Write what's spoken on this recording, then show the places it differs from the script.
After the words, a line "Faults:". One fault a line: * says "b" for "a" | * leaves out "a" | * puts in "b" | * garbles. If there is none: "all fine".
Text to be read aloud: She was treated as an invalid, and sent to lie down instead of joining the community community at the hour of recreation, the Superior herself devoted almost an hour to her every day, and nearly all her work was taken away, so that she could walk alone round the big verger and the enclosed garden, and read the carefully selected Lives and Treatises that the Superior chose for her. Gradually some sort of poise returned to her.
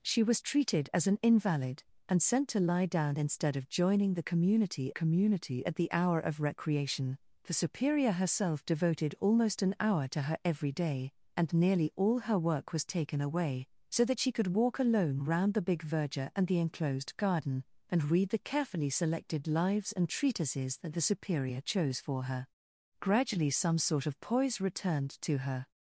She was treated as an invalid, and sent to lie down instead of joining the community community at the hour of recreation, the Superior herself devoted almost an hour to her every day, and nearly all her work was taken away, so that she could walk alone round the big verger and the enclosed garden, and read the carefully selected Lives and Treatises that the Superior chose for her. Gradually some sort of poise returned to her.
Faults:
all fine